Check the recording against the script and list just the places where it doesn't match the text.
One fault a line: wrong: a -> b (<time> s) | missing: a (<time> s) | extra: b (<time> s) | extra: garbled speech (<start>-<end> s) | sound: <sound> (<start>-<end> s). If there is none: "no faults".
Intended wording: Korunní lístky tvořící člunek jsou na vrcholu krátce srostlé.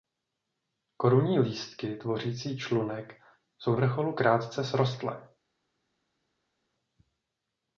missing: na (3.8 s)